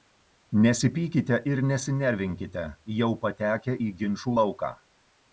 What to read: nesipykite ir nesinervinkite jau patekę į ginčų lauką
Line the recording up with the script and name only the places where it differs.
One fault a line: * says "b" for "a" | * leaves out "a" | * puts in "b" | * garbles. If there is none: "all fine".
all fine